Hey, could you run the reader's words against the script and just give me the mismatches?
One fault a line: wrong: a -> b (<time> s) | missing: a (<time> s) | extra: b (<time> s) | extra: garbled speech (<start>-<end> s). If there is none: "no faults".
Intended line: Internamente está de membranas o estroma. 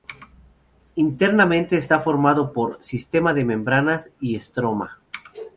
extra: formado por sistema (2.0 s)
wrong: o -> y (4.2 s)